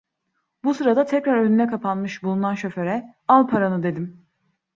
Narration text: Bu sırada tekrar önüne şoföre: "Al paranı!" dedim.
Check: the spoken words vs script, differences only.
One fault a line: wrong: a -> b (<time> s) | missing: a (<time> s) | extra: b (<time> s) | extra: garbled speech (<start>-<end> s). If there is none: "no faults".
extra: kapanmış bulunan (1.7 s)